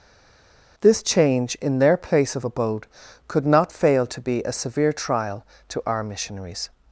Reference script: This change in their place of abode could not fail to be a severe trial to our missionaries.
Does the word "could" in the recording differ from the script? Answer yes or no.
no